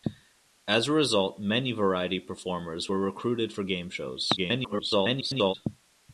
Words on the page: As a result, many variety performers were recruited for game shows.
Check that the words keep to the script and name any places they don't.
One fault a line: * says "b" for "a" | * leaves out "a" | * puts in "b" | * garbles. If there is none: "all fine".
* garbles